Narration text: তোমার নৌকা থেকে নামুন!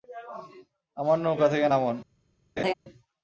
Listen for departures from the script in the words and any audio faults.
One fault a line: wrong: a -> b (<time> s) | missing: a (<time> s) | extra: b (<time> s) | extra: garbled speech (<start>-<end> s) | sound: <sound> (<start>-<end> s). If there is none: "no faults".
wrong: তোমার -> আমার (1.0 s)
sound: laugh (2.6-2.7 s)